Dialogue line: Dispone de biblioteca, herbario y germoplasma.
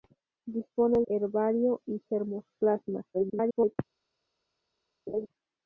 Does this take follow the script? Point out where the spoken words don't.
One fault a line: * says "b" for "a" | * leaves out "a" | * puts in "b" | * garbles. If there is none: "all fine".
* leaves out "de biblioteca"
* garbles